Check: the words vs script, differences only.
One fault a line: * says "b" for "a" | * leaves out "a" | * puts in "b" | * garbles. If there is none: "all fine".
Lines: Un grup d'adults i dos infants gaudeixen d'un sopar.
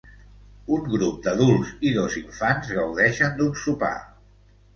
all fine